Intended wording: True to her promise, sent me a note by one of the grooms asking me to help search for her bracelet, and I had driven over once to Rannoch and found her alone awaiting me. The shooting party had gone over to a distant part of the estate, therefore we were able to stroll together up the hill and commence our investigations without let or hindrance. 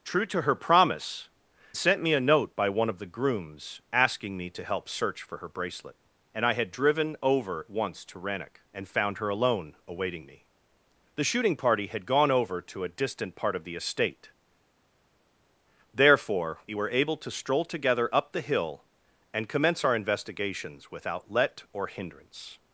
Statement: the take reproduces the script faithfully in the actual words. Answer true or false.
true